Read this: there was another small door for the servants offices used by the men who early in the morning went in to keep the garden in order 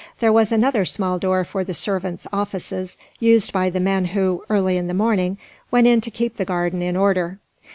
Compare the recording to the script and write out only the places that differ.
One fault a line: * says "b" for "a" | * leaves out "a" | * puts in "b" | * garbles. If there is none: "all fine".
all fine